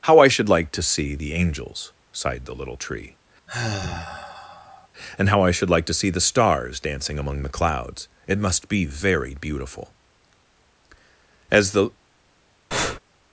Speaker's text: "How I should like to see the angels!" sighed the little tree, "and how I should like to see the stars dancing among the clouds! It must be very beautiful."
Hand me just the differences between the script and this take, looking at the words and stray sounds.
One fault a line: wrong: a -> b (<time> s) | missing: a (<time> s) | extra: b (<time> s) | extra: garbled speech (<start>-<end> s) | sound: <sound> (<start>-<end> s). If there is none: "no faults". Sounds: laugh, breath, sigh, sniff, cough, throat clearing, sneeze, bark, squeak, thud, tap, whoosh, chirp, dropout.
sound: sigh (3.5-4.9 s)
extra: As the (11.5 s)
sound: breath (12.7-13.0 s)